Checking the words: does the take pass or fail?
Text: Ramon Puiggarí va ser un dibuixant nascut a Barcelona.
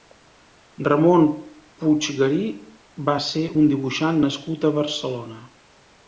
pass